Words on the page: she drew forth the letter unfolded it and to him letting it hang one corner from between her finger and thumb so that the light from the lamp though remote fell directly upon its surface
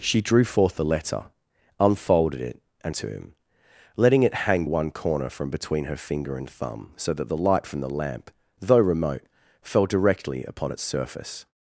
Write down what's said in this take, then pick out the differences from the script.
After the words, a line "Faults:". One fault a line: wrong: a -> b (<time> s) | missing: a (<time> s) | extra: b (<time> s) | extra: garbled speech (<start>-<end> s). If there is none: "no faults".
she drew forth the letter unfolded it and to him letting it hang one corner from between her finger and thumb so that the light from the lamp though remote fell directly upon its surface
Faults:
no faults